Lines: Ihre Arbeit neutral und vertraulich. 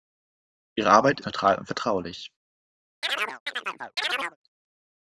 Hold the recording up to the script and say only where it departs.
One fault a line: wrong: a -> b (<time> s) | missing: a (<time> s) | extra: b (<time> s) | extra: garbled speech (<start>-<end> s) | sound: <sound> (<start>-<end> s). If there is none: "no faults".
sound: chirp (3.0-4.4 s)